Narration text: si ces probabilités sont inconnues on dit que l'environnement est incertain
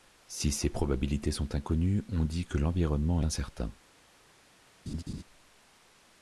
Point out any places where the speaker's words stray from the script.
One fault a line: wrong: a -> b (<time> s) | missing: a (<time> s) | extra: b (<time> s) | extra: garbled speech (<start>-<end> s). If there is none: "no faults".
missing: est (3.2 s)